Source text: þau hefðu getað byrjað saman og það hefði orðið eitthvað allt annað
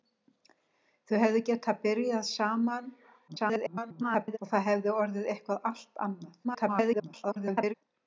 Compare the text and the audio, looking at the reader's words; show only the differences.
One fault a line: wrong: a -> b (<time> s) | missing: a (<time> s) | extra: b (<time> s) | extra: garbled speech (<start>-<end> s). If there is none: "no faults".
extra: garbled speech (3.3-4.4 s)
extra: garbled speech (6.4-7.7 s)